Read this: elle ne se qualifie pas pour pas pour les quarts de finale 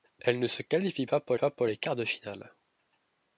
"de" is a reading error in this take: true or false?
false